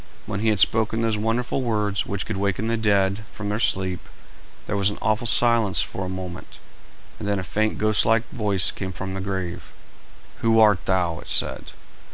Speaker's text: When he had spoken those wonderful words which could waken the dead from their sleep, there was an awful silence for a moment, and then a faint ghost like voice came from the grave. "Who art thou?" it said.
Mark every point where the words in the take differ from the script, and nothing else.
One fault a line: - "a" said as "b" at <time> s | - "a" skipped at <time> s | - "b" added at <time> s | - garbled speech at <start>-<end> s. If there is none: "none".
none